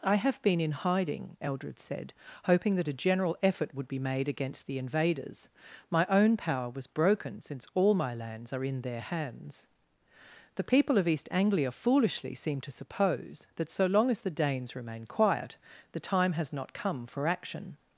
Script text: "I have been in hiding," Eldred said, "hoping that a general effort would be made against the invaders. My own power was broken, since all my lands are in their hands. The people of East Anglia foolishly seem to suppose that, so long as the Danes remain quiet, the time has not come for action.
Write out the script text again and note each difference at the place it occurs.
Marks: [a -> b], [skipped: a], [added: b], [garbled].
"I have been in hiding," Eldred said, "hoping that a general effort would be made against the invaders. My own power was broken, since all my lands are in their hands. The people of East Anglia foolishly seem to suppose that, so long as the Danes remain quiet, the time has not come for action.